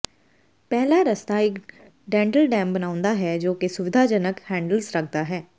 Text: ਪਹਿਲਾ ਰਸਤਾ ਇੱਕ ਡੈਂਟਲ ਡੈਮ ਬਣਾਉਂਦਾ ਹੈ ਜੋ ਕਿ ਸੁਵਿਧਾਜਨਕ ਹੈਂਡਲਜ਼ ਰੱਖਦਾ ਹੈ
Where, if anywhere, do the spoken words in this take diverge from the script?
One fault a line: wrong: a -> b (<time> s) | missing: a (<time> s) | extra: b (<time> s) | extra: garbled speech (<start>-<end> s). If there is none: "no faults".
no faults